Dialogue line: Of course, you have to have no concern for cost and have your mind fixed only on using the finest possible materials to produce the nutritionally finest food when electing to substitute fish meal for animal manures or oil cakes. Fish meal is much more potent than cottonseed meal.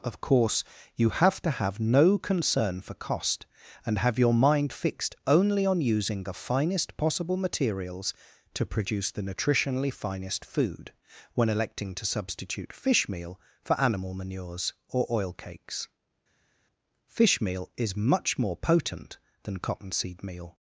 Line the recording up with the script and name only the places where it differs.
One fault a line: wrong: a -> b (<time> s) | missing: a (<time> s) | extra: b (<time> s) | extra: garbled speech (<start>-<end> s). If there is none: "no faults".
no faults